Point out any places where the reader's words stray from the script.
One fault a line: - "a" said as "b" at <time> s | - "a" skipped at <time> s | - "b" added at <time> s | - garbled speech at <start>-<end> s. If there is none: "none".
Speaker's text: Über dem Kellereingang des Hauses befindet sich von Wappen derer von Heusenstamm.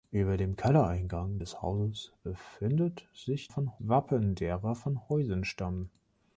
none